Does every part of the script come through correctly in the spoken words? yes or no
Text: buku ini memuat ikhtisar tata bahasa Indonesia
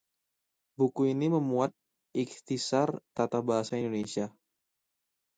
yes